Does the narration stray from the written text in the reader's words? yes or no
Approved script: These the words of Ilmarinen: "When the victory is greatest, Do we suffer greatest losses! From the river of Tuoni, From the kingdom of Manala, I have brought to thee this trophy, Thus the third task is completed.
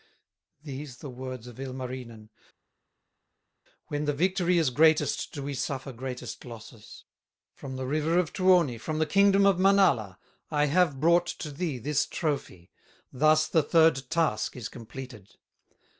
no